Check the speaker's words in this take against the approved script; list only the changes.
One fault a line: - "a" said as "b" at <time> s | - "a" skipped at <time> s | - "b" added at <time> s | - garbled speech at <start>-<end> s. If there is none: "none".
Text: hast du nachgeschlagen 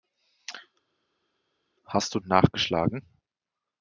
none